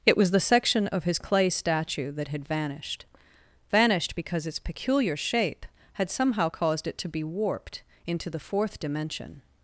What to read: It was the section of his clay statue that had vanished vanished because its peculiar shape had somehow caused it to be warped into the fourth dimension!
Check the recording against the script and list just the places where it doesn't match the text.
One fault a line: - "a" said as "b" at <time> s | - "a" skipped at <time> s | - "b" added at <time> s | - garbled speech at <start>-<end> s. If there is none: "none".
none